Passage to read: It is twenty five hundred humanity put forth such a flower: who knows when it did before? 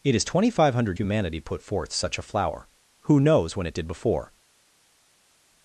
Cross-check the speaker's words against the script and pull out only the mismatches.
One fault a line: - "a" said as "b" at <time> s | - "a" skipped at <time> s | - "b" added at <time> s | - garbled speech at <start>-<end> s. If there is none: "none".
none